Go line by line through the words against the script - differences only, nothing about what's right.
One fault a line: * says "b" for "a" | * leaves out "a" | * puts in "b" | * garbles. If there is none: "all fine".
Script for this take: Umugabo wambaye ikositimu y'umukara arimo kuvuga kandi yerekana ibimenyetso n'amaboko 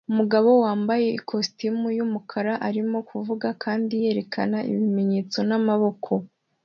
all fine